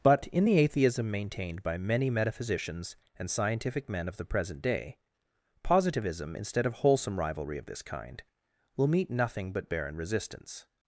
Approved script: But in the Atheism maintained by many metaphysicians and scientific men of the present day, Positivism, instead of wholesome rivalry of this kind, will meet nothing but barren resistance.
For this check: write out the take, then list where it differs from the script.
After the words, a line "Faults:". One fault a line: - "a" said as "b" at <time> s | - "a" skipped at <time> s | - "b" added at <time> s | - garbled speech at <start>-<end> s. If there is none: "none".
But in the Atheism maintained by many metaphysicians and scientific men of the present day, Positivism, instead of wholesome rivalry of this kind, will meet nothing but barren resistance.
Faults:
none